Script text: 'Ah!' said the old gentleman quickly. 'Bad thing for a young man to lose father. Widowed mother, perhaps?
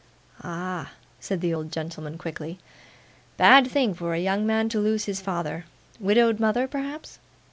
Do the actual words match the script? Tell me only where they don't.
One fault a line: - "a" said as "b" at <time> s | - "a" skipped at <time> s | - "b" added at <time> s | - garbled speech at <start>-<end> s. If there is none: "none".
- "his" added at 5.1 s